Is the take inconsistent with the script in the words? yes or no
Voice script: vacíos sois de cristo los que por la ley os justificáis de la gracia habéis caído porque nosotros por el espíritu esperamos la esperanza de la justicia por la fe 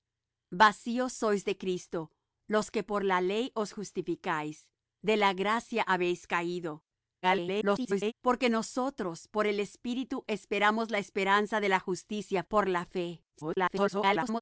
yes